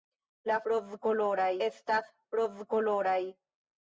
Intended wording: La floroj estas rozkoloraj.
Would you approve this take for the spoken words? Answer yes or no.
no